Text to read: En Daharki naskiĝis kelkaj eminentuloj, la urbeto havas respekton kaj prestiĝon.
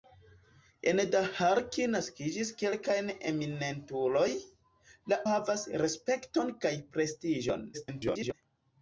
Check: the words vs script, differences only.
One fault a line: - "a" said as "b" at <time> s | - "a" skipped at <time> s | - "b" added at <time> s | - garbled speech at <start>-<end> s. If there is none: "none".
- "urbeto" skipped at 5.2 s
- garbled speech at 7.7-8.3 s